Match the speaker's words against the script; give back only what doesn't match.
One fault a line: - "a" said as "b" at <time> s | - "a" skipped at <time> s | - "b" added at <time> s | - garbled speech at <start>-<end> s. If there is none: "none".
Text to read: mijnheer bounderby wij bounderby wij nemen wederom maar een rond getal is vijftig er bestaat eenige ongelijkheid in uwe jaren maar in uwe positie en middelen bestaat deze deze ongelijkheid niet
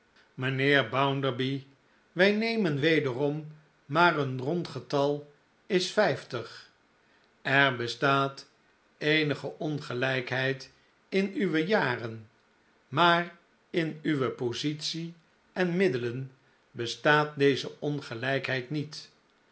- "bounderby wij" skipped at 2.3 s
- "deze" skipped at 17.7 s